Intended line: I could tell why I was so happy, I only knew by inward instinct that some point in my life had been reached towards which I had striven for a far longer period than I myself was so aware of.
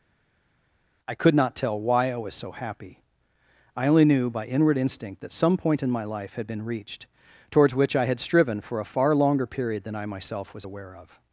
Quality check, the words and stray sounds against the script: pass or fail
fail